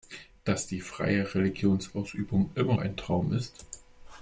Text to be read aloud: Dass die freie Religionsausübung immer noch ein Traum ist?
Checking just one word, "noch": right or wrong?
wrong